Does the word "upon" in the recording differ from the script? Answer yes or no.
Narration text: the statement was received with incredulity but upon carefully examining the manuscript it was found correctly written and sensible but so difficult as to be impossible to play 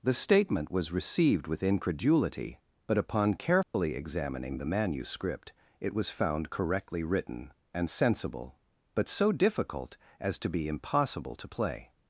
no